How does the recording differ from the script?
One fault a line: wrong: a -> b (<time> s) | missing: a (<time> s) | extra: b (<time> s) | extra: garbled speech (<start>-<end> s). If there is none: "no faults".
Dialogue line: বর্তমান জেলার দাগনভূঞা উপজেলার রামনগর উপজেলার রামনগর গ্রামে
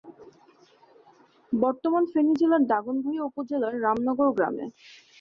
extra: ফেনী (2.1 s)
missing: উপজেলার রামনগর (4.3 s)